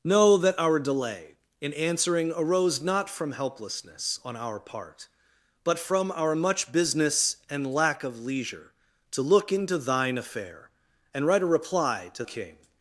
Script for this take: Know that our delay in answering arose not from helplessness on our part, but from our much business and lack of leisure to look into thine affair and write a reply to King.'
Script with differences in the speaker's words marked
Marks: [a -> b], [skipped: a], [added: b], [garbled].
Know that our delay in answering arose not from helplessness on our part, but from our much business and lack of leisure to look into thine affair and write a reply to King.'